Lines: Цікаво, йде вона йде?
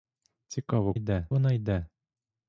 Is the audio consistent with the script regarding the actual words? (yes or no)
yes